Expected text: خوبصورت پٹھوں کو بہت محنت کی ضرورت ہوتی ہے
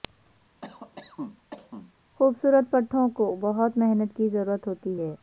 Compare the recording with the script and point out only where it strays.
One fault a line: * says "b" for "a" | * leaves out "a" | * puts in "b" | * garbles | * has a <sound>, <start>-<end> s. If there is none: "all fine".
* has a cough, 0.6-1.9 s